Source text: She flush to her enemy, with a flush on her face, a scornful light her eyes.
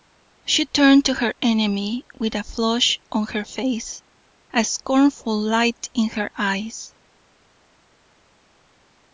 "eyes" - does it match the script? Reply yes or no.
yes